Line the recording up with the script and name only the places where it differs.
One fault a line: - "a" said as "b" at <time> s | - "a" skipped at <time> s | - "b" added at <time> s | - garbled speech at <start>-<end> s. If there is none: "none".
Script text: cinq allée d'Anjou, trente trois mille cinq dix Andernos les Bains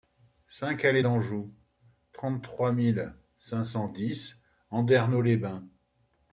- "cent" added at 3.6 s